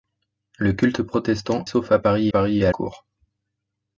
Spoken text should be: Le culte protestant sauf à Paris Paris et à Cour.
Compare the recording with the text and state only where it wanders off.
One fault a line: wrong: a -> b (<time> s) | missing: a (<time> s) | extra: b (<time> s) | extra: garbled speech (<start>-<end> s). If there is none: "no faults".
no faults